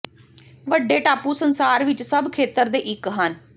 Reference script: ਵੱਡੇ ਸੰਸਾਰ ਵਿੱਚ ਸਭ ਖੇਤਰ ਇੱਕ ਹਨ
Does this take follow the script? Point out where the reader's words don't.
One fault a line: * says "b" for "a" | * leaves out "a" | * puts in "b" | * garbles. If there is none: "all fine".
* puts in "ਟਾਪੂ"
* puts in "ਦੇ"